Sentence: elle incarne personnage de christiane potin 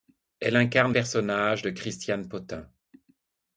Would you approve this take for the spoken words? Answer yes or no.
yes